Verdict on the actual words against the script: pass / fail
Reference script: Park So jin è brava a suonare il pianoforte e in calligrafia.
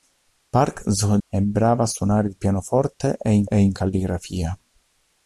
fail